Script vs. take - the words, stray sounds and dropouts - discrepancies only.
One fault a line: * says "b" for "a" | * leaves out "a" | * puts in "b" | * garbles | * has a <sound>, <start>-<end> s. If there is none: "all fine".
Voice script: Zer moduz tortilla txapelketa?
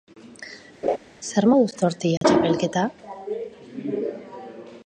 * has a laugh, 0.8-1.0 s
* has a dropout, 2.2-2.2 s